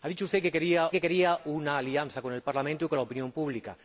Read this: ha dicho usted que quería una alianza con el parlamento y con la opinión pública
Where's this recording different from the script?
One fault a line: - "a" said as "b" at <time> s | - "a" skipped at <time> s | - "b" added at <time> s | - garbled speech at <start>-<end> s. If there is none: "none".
- "que quería" added at 0.9 s